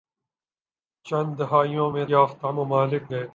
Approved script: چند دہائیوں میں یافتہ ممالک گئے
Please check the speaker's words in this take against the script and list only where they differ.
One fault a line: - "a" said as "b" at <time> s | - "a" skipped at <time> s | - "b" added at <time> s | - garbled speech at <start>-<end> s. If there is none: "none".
none